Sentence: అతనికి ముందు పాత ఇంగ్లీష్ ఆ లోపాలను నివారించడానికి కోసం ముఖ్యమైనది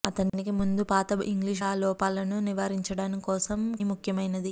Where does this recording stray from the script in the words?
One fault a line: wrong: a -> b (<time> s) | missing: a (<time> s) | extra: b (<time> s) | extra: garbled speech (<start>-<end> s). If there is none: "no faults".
no faults